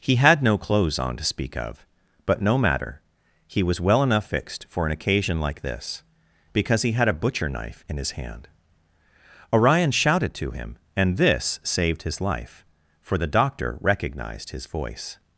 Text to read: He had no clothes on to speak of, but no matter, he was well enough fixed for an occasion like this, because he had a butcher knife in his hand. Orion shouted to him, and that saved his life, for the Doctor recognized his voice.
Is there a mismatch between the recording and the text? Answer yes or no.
yes